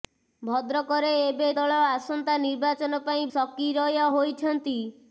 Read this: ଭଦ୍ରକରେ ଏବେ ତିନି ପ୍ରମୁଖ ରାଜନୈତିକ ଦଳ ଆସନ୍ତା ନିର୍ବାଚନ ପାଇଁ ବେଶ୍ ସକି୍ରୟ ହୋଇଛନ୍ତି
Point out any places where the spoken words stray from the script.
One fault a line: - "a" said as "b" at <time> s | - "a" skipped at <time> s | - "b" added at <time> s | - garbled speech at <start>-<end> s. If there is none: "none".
- "ତିନି ପ୍ରମୁଖ ରାଜନୈତିକ" skipped at 1.5 s
- "ବେଶ୍" skipped at 3.3 s